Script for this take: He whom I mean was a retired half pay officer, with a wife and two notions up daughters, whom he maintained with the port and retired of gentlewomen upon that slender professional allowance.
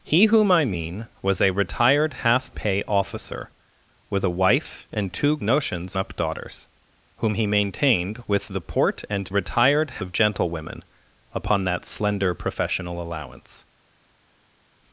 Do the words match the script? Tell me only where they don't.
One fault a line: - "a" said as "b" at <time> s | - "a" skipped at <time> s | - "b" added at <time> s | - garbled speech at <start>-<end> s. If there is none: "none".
none